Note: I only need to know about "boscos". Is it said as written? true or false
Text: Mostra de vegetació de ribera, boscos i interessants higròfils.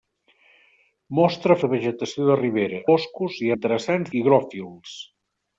true